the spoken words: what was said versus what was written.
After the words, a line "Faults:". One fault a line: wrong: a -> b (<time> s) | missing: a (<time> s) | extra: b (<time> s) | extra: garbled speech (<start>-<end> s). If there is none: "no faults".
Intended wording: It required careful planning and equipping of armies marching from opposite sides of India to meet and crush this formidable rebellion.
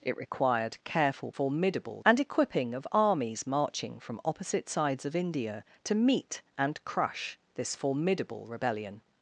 It required careful formidable and equipping of armies marching from opposite sides of India to meet and crush this formidable rebellion.
Faults:
wrong: planning -> formidable (1.3 s)